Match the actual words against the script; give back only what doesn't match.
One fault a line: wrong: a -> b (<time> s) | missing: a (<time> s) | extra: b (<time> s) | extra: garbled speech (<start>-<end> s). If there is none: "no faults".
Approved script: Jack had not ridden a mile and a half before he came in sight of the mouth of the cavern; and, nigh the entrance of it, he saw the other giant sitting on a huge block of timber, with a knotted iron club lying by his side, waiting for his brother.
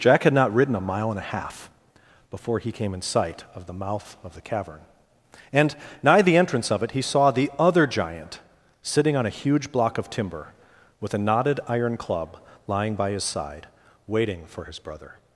no faults